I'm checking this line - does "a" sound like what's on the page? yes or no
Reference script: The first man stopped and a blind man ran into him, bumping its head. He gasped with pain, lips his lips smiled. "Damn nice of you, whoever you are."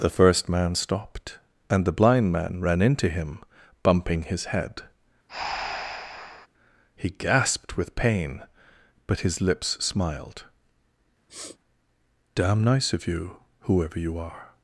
no